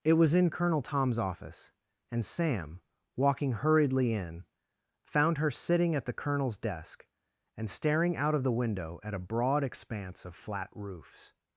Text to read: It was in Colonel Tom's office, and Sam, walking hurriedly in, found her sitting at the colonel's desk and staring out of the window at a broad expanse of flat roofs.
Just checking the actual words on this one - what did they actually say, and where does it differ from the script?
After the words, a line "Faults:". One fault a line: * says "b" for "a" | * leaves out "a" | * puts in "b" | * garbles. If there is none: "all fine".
It was in Colonel Tom's office, and Sam, walking hurriedly in, found her sitting at the colonel's desk and staring out of the window at a broad expanse of flat roofs.
Faults:
all fine